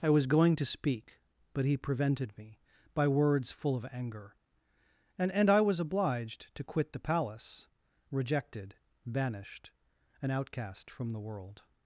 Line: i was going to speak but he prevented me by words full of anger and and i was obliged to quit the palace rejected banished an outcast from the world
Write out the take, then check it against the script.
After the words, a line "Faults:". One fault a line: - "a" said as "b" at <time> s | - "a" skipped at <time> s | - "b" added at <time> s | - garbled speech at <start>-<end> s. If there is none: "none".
i was going to speak but he prevented me by words full of anger and and i was obliged to quit the palace rejected banished an outcast from the world
Faults:
none